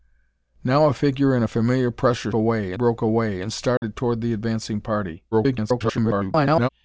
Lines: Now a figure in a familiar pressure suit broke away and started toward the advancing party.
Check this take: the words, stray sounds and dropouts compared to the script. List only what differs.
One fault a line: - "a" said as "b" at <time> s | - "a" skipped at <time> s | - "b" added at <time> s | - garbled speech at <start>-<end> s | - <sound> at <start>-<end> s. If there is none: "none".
- "suit" said as "away" at 2.3 s
- dropout at 3.8-3.8 s
- garbled speech at 5.3-6.7 s